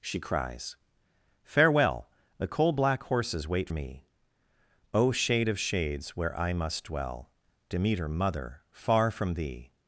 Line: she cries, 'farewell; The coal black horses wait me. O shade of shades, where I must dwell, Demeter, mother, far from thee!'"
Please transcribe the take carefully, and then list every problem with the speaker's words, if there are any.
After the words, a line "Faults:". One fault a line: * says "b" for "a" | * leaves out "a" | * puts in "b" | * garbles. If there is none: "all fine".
she cries, 'farewell; The coal black horses wait me. O shade of shades, where I must dwell, Demeter, mother, far from thee!'"
Faults:
all fine